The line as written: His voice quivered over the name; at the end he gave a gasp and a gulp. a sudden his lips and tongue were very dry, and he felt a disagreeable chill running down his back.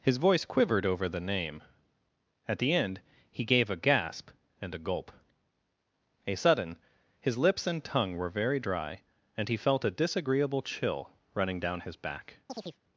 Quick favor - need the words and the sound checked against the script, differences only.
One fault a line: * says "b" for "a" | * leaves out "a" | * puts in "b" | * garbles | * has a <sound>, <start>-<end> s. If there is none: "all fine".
* has a chirp, 12.5-12.8 s